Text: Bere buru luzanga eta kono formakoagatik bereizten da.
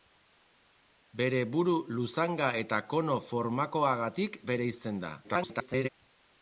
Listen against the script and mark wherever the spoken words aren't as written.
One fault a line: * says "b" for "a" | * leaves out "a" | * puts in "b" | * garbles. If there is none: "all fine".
* garbles